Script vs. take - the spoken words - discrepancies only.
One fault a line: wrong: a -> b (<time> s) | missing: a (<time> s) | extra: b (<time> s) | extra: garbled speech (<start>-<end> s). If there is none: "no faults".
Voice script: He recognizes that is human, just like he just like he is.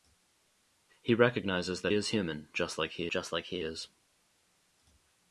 no faults